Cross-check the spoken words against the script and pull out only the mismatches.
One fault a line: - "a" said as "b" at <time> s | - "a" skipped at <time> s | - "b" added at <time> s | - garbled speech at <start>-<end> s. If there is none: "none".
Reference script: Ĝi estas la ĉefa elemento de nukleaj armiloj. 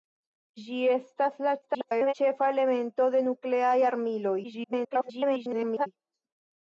- garbled speech at 1.6-2.1 s
- garbled speech at 4.4-5.9 s